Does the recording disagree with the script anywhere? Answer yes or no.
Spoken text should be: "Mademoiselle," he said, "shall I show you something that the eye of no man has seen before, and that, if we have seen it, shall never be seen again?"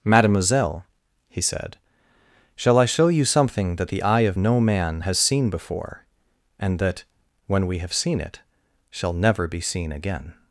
yes